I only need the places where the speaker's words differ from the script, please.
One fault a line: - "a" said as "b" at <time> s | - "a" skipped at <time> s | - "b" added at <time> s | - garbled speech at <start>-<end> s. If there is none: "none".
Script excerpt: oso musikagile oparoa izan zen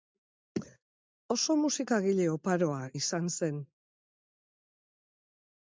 none